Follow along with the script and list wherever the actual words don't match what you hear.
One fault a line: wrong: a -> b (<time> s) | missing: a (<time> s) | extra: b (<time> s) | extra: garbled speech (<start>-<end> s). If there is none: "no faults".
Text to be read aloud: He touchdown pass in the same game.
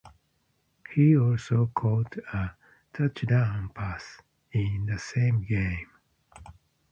extra: also caught a (1.1 s)